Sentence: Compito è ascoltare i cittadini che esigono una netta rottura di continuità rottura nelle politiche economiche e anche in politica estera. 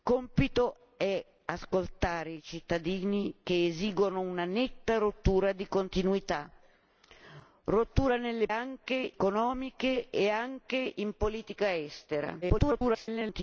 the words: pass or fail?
fail